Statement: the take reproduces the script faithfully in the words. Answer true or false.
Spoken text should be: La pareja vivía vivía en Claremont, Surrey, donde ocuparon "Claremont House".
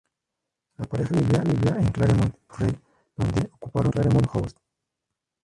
true